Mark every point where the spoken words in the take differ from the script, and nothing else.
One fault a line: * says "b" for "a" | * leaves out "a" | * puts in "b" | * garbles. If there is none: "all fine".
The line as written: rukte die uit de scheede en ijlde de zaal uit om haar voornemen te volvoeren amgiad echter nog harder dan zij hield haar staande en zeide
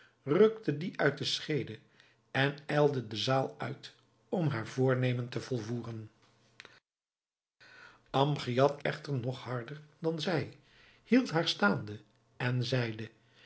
all fine